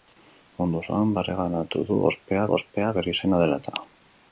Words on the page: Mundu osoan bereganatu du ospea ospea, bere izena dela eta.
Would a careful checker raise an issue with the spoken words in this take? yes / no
no